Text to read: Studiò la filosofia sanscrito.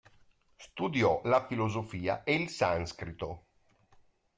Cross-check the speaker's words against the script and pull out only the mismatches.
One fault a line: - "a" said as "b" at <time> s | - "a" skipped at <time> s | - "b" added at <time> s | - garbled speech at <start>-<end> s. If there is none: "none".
- "e il" added at 2.2 s